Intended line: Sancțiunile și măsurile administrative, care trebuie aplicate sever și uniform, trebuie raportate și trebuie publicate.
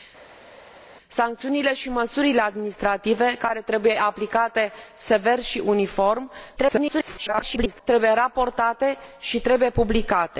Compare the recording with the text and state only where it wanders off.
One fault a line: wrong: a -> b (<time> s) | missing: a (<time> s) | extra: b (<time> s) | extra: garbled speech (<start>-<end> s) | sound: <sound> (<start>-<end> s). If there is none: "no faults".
extra: garbled speech (6.6-7.8 s)